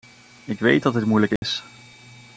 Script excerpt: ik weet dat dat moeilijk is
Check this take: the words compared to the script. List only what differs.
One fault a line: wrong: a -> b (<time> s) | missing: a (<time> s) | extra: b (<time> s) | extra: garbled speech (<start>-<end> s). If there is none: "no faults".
wrong: dat -> dit (0.9 s)